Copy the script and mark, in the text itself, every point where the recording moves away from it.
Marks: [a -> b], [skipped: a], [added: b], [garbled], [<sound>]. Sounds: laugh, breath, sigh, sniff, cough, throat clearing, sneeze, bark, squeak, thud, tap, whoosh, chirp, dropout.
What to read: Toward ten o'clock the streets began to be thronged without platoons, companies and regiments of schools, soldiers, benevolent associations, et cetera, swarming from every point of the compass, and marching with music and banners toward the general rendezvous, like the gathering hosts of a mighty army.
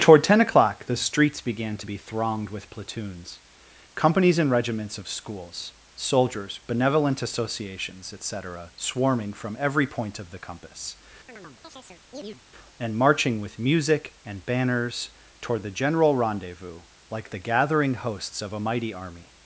Toward ten o'clock the streets began to be thronged [without -> with] platoons, companies and regiments of schools, soldiers, benevolent associations, et cetera, swarming from every point of the compass, [chirp] and marching with music and banners toward the general rendezvous, like the gathering hosts of a mighty army.